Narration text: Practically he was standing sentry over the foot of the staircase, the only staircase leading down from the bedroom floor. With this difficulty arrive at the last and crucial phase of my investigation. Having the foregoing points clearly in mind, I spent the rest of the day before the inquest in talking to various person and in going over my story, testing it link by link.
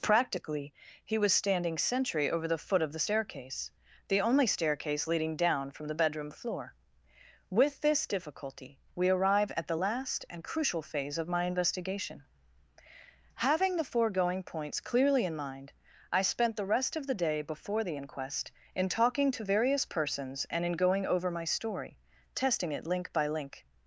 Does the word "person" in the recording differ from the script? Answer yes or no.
yes